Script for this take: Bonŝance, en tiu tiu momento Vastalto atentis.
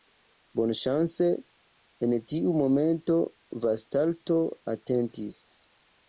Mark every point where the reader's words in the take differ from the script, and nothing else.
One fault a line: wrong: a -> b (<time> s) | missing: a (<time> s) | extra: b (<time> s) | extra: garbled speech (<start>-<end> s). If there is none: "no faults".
missing: tiu (2.5 s)